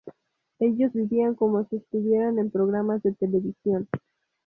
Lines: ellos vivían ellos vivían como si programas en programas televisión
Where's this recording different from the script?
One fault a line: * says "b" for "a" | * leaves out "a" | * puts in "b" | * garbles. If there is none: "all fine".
* leaves out "ellos vivían"
* says "estuvieran" for "programas"
* puts in "de"